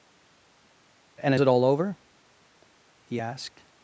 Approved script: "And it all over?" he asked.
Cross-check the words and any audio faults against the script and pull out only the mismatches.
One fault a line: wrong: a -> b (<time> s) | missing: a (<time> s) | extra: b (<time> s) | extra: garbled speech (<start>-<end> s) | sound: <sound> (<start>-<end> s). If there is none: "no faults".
no faults